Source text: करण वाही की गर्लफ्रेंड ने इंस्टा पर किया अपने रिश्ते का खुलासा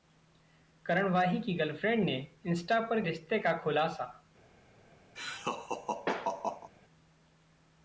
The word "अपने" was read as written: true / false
false